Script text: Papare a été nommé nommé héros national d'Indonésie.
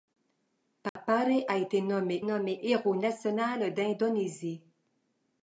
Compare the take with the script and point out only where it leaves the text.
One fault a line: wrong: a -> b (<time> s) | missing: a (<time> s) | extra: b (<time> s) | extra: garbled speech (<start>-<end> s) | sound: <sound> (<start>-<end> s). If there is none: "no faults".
sound: dropout (0.9-1.0 s)